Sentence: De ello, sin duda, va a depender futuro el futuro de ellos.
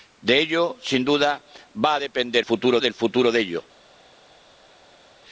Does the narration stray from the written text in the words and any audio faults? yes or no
no